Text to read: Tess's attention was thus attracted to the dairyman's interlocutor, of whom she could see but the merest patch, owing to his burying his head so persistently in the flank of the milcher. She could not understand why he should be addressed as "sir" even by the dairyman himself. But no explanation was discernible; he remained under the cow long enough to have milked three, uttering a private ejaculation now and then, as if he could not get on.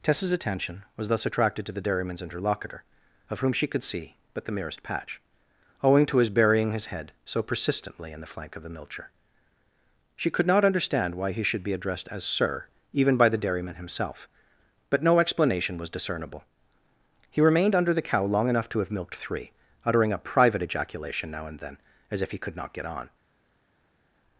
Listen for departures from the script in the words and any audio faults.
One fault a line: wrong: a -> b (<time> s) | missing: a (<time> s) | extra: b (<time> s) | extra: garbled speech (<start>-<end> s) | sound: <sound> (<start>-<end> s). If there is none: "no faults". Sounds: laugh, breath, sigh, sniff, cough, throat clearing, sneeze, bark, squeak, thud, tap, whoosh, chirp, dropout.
no faults